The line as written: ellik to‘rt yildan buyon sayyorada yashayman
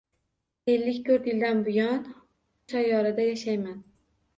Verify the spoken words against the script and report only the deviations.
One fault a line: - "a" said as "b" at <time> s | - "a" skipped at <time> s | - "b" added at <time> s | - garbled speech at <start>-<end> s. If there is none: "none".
none